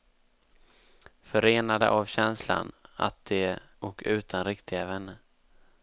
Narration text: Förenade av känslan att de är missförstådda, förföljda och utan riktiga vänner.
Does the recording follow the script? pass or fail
fail